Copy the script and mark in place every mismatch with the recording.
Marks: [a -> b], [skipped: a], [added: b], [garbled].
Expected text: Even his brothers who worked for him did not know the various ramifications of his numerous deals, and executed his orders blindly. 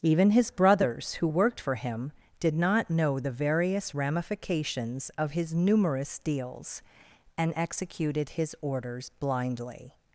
Even his brothers who worked for him did not know the various ramifications of his numerous deals, and executed his orders blindly.